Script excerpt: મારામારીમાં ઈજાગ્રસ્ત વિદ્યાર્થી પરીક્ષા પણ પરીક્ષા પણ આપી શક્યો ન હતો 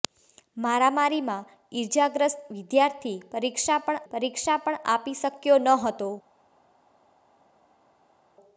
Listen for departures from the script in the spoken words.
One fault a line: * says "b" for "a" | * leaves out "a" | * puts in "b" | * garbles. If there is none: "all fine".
all fine